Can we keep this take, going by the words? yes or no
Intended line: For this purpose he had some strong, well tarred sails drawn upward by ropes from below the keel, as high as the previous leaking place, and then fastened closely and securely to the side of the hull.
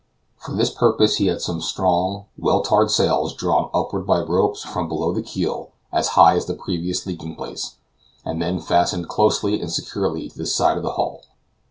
yes